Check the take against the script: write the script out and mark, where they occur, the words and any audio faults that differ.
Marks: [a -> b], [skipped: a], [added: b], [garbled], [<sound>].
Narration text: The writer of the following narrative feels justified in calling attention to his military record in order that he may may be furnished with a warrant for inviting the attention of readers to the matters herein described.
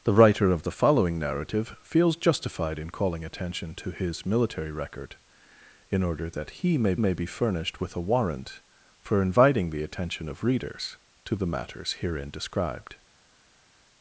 The writer of the following narrative feels justified in calling attention to his military record in order that he may may be furnished with a warrant for inviting the attention of readers to the matters herein described.